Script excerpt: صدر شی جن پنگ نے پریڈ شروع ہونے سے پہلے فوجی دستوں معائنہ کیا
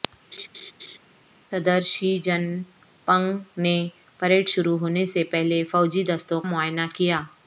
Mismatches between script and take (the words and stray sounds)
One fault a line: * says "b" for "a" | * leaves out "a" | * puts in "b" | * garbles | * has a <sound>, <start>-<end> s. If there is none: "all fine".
* has a laugh, 0.3-1.0 s